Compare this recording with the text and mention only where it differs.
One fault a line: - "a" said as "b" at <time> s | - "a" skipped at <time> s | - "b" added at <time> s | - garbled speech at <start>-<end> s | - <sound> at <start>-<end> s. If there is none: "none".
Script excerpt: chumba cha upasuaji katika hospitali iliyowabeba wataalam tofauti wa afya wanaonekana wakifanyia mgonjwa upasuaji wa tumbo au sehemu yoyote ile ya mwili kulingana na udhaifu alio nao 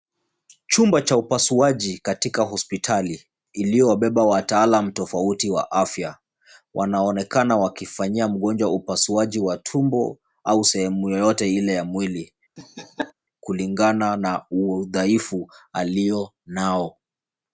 - laugh at 12.6-13.1 s